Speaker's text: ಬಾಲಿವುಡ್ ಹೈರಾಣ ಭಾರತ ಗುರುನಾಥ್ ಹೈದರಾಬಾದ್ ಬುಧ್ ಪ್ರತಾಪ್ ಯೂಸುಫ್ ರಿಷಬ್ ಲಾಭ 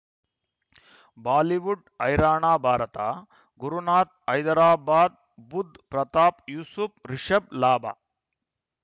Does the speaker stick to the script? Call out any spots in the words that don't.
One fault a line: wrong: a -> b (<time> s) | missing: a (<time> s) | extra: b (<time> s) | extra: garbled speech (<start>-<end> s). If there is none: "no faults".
no faults